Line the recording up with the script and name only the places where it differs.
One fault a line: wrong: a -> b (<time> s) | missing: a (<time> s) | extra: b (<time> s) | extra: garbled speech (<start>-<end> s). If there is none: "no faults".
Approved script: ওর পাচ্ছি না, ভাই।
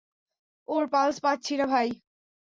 extra: পালস (0.9 s)